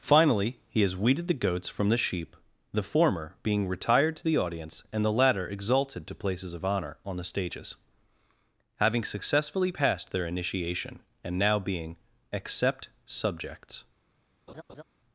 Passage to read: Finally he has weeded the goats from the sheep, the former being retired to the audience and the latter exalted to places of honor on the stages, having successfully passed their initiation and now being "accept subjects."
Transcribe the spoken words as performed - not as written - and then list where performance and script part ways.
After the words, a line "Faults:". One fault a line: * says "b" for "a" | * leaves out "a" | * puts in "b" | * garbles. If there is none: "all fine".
Finally he has weeded the goats from the sheep, the former being retired to the audience and the latter exalted to places of honor on the stages, having successfully passed their initiation and now being "accept subjects."
Faults:
all fine